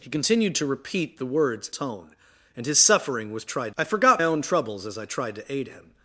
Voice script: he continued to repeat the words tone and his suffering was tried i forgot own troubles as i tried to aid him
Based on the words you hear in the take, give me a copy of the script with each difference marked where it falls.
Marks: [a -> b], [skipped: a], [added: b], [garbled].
he continued to repeat the words tone and his suffering was tried i forgot own troubles as i tried to aid him